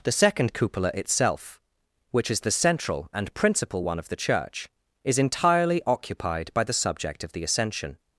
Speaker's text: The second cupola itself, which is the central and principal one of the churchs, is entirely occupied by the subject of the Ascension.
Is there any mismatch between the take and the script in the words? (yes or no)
yes